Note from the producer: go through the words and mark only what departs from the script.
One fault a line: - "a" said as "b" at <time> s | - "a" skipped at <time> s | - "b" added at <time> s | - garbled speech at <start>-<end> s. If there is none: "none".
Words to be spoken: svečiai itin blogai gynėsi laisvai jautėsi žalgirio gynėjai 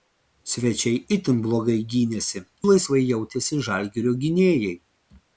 none